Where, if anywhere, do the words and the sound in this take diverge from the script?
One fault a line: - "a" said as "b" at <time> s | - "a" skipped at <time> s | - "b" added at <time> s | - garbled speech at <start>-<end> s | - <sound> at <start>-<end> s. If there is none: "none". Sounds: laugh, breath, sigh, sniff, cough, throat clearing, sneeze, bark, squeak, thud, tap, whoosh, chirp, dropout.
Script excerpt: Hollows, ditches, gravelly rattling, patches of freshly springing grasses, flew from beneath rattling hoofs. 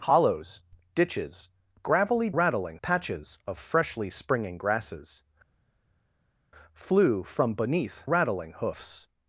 none